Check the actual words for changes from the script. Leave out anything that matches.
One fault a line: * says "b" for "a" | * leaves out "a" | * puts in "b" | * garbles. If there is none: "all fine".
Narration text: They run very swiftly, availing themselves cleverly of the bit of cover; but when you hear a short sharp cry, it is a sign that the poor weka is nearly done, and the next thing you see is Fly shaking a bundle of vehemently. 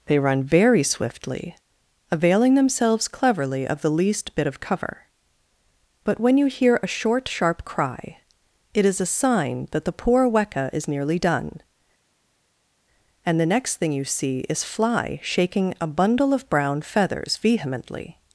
* puts in "least"
* puts in "brown feathers"